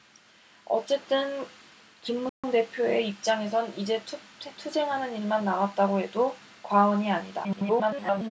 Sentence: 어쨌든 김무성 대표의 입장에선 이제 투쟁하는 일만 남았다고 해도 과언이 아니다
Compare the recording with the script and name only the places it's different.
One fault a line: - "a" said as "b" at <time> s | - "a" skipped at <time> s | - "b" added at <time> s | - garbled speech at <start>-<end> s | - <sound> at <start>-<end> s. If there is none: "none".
- dropout at 2.3-2.4 s
- garbled speech at 7.4-8.3 s